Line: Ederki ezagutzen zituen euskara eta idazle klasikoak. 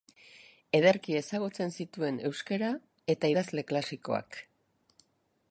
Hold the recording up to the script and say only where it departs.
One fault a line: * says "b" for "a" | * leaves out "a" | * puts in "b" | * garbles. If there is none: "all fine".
all fine